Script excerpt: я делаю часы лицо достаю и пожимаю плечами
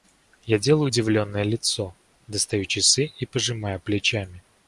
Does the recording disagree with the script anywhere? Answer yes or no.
yes